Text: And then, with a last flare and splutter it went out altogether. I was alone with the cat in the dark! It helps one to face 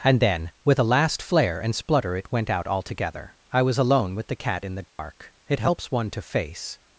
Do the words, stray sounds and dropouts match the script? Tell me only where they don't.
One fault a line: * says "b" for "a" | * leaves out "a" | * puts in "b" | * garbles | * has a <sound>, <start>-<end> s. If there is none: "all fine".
* has a dropout, 4.9-5.0 s